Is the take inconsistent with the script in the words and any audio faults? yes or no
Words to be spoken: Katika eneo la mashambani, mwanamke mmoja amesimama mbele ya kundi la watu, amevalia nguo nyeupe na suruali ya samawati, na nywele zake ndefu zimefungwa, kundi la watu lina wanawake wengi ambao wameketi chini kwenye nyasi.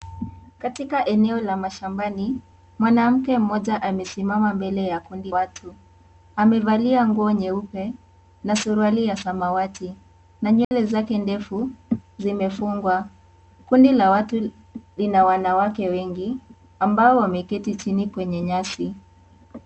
yes